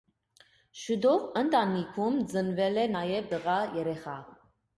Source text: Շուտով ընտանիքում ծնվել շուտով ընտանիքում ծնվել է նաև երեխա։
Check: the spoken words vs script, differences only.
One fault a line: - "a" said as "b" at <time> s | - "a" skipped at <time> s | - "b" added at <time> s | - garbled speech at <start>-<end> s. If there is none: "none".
- "շուտով ընտանիքում ծնվել" skipped at 2.8 s
- "տղա" added at 3.3 s